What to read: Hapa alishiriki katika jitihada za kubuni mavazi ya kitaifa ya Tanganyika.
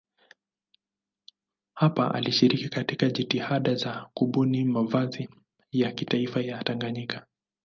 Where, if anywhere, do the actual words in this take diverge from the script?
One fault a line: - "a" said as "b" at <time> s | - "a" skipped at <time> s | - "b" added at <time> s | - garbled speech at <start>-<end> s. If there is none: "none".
none